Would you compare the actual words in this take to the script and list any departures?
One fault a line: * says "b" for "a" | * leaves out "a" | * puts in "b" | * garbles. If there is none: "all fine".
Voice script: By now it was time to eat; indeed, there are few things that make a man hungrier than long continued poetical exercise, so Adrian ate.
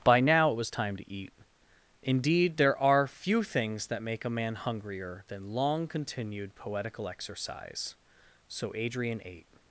all fine